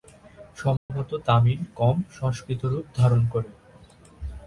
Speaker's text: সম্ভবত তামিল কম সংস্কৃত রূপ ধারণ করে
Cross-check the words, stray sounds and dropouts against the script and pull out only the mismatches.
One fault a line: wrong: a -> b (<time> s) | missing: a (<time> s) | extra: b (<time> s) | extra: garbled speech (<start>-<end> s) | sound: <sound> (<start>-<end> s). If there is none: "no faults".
sound: dropout (0.8-0.9 s)